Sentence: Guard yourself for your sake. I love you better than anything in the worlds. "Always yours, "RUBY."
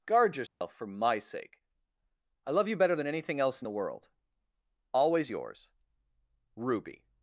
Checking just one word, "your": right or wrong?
wrong